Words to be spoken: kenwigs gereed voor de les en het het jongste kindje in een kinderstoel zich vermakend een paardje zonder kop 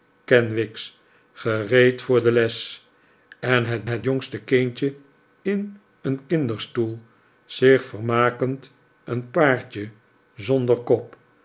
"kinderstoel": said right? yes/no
yes